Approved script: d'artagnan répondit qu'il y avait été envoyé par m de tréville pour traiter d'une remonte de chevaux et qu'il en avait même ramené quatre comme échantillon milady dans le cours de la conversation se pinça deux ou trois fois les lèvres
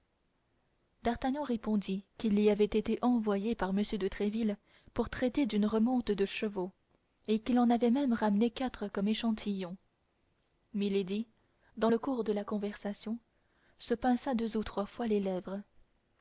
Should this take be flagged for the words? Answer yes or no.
no